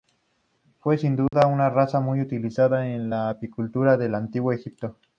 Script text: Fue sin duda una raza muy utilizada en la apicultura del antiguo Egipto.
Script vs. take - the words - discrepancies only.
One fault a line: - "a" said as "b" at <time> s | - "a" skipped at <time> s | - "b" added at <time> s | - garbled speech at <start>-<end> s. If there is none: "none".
none